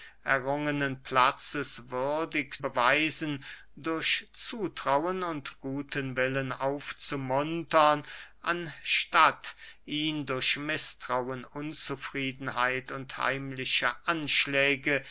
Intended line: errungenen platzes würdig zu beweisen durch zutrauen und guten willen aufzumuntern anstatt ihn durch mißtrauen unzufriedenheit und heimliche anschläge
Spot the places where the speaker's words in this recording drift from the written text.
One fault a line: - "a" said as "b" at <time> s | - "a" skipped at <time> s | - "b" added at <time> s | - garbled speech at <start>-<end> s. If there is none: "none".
- "zu" skipped at 2.6 s